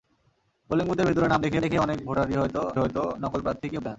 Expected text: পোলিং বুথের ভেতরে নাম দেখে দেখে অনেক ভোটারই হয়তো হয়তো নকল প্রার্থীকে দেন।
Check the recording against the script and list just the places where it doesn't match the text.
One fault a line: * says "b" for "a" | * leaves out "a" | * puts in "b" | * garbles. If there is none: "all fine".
all fine